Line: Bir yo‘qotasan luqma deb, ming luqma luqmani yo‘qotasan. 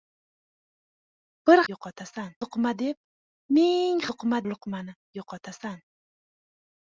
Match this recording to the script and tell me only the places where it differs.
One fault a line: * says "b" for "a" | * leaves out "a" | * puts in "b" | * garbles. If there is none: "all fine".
all fine